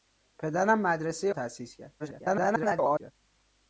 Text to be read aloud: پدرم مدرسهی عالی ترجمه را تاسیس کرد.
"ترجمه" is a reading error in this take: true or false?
true